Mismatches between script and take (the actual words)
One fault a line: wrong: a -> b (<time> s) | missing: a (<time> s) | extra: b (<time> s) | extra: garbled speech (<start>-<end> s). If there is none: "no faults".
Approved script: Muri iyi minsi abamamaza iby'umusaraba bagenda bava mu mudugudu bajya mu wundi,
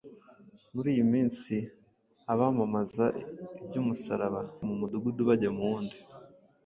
missing: bagenda bava (4.4 s)